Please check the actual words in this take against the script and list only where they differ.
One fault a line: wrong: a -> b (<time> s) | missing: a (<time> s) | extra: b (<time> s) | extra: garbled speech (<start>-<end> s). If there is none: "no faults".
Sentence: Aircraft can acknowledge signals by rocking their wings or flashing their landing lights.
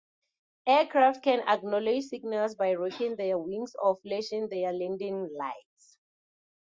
no faults